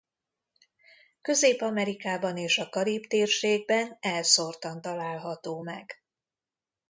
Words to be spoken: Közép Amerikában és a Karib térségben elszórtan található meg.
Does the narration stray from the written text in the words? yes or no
no